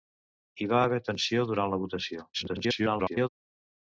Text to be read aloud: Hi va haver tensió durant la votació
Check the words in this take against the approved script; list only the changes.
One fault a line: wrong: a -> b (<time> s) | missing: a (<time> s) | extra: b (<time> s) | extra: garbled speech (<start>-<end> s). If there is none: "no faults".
extra: garbled speech (2.3-3.3 s)